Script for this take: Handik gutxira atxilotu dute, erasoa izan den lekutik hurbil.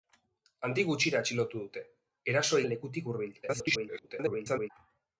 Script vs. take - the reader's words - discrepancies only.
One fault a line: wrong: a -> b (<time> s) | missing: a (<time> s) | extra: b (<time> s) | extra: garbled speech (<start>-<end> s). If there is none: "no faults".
missing: izan (2.6 s)
extra: garbled speech (3.4-4.7 s)